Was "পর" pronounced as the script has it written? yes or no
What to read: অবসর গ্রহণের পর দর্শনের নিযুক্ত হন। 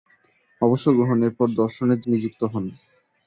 yes